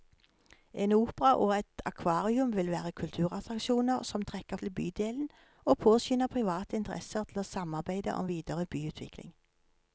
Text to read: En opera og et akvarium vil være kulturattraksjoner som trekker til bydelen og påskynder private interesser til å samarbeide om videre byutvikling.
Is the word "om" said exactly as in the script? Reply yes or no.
yes